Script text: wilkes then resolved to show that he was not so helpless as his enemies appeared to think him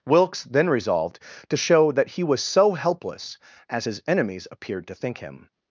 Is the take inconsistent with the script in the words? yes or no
yes